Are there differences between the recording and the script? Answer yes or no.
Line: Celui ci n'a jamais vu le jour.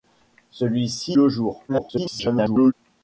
yes